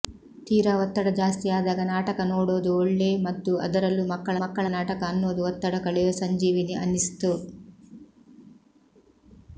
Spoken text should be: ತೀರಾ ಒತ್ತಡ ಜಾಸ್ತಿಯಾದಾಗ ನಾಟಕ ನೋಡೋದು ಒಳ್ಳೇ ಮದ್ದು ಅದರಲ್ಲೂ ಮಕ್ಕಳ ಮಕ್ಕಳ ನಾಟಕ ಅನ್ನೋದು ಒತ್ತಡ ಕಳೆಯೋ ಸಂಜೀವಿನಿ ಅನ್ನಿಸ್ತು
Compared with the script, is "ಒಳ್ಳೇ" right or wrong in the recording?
right